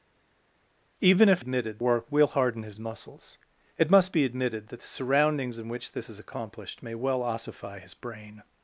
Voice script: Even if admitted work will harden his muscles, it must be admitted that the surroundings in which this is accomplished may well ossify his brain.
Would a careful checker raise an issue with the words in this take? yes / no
no